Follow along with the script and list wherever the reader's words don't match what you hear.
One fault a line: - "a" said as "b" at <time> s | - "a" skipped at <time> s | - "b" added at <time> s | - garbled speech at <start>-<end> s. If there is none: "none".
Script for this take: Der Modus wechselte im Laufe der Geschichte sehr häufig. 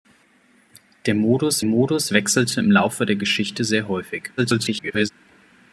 - "Modus" added at 1.6 s
- garbled speech at 4.4-5.1 s